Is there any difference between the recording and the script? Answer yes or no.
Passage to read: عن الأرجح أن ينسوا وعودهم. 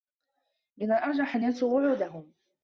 yes